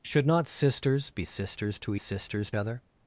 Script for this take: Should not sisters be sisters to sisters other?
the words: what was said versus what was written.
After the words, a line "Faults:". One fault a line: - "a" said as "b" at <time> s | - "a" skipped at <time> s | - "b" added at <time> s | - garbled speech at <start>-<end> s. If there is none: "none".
Should not sisters be sisters to sisters other?
Faults:
none